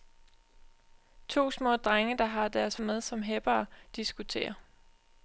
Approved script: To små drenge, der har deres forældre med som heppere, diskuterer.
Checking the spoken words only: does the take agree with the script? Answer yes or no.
no